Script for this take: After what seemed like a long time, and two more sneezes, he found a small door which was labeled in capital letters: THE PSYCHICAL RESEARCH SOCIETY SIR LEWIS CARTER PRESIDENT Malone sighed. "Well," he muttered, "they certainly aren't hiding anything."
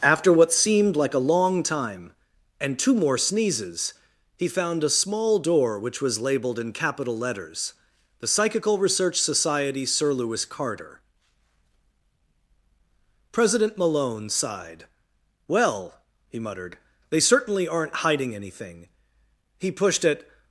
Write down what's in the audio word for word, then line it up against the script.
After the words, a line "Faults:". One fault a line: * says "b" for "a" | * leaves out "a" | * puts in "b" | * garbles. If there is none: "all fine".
After what seemed like a long time, and two more sneezes, he found a small door which was labeled in capital letters: THE PSYCHICAL RESEARCH SOCIETY SIR LEWIS CARTER PRESIDENT Malone sighed. "Well," he muttered, "they certainly aren't hiding anything." He pushed at
Faults:
* puts in "He pushed at"